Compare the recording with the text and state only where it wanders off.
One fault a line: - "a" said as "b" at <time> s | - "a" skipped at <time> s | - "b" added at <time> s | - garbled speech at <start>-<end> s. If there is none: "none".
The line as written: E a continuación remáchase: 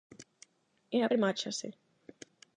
- "continuación" skipped at 1.1 s